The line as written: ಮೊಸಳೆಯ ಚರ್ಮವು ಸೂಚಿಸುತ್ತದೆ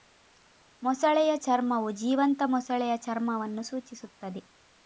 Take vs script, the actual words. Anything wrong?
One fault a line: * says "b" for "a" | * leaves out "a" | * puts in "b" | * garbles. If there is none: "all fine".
* puts in "ಜೀವಂತ ಮೊಸಳೆಯ ಚರ್ಮವನ್ನು"